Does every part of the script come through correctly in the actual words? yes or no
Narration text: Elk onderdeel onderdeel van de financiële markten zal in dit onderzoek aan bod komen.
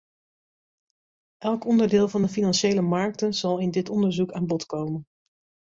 no